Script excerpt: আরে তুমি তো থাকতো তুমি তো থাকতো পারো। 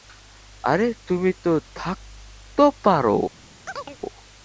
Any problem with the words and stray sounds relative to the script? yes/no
yes